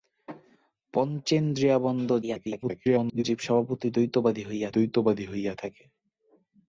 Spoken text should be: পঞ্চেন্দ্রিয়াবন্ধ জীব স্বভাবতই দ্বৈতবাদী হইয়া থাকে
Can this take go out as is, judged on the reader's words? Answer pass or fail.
fail